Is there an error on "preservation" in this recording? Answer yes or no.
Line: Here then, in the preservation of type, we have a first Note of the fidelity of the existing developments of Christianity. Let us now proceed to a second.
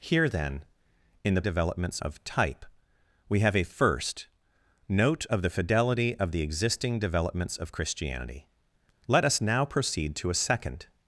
yes